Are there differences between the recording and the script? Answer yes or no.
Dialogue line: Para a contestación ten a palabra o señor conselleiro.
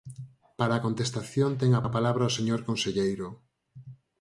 yes